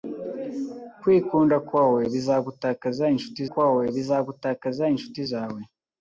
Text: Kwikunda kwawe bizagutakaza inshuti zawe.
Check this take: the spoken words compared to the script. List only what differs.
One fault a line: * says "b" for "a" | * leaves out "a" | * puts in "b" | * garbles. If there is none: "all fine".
* puts in "kwawe bizagutakaza inshuti"